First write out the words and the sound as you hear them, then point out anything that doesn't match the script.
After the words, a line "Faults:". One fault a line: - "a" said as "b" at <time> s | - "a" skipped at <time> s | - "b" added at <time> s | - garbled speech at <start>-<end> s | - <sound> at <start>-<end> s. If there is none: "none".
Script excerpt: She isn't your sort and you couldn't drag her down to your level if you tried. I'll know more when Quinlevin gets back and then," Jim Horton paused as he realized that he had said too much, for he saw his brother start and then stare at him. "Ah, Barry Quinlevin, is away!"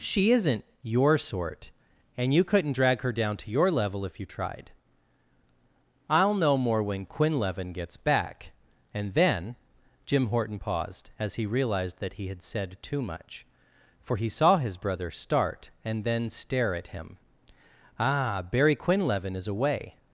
She isn't your sort and you couldn't drag her down to your level if you tried. I'll know more when Quinlevin gets back and then," Jim Horton paused as he realized that he had said too much, for he saw his brother start and then stare at him. "Ah, Barry Quinlevin, is away!"
Faults:
none